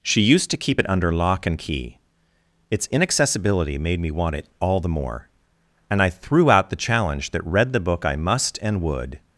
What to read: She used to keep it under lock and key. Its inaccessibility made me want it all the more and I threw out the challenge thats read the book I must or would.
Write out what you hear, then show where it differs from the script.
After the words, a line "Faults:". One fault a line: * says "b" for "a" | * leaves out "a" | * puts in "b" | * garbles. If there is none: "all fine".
She used to keep it under lock and key. Its inaccessibility made me want it all the more and I threw out the challenge that read the book I must and would.
Faults:
* says "that" for "thats"
* says "and" for "or"